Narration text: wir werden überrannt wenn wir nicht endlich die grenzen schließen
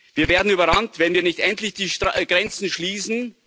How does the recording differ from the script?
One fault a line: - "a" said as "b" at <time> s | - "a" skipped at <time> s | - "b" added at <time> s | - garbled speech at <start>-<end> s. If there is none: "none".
none